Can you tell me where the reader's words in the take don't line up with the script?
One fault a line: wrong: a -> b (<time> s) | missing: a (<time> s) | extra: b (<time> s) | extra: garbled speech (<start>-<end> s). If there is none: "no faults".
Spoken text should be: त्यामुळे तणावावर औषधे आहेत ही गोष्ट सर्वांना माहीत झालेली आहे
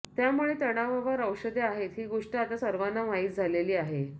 extra: आता (2.4 s)